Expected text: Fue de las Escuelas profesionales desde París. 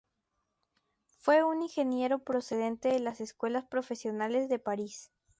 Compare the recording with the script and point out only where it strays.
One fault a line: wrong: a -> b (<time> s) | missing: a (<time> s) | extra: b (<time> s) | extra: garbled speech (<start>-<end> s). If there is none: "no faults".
extra: un ingeniero procedente (1.4 s)
wrong: desde -> de (4.5 s)